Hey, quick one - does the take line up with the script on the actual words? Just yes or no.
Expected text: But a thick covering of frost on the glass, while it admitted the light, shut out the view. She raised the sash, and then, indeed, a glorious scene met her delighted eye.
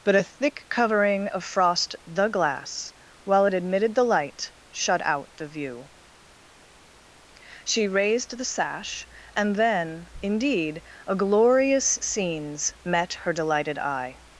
no